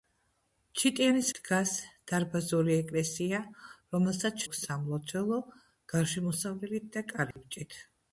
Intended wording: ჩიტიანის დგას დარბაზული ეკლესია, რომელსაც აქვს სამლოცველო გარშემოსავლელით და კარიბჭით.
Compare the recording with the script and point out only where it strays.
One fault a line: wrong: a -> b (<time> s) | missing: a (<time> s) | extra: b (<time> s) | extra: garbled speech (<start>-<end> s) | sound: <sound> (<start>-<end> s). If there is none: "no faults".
sound: dropout (7.3-7.4 s)